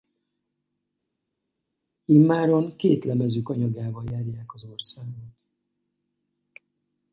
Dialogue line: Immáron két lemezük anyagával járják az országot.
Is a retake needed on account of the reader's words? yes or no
no